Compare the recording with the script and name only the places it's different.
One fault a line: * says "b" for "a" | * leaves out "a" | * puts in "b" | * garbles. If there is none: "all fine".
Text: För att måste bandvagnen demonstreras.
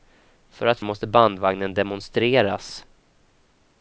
all fine